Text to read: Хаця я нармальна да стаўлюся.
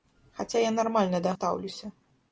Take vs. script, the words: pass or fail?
pass